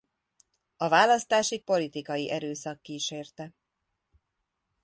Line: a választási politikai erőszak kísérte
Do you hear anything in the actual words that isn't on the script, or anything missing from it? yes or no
no